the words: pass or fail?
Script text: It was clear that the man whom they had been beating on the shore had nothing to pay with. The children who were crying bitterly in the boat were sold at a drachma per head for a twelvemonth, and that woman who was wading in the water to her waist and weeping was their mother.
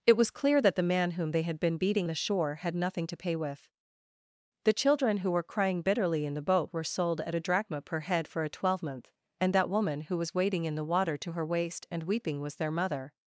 fail